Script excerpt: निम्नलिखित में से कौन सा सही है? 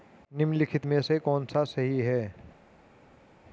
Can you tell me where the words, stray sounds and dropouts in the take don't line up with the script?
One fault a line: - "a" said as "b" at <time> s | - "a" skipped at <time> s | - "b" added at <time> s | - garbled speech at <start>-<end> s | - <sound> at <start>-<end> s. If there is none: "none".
none